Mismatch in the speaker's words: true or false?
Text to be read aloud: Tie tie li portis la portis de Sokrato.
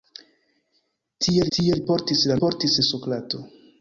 false